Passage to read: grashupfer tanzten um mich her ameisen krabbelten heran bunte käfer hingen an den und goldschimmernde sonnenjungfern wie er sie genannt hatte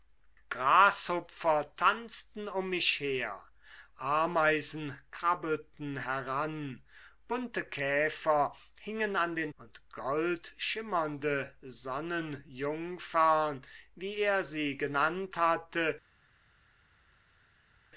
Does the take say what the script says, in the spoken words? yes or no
yes